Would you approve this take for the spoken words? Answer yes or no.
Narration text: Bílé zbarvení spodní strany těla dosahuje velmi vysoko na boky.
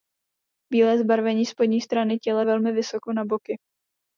no